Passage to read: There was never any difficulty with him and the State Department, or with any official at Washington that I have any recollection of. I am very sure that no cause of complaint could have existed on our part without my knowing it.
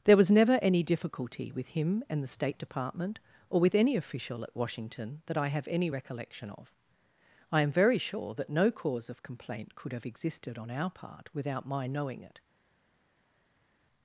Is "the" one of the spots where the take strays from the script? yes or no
no